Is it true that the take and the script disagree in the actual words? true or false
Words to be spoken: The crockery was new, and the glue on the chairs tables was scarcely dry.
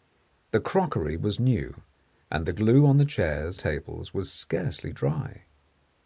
false